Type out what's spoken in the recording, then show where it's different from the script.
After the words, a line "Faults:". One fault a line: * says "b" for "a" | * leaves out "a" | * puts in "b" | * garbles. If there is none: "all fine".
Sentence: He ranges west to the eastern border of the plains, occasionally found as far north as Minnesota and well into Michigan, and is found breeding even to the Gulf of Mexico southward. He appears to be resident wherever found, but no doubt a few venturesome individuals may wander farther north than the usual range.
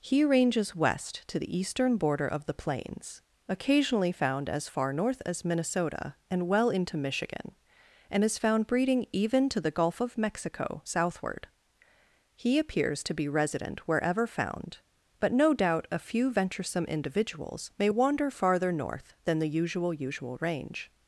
He ranges west to the eastern border of the plains, occasionally found as far north as Minnesota and well into Michigan, and is found breeding even to the Gulf of Mexico southward. He appears to be resident wherever found, but no doubt a few venturesome individuals may wander farther north than the usual usual range.
Faults:
* puts in "usual"